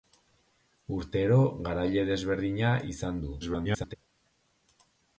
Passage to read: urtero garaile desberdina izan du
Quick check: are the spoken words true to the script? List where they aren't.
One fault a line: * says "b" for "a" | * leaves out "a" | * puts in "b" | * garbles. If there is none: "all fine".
* garbles